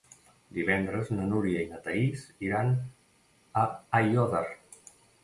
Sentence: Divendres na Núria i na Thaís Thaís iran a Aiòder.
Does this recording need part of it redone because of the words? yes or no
yes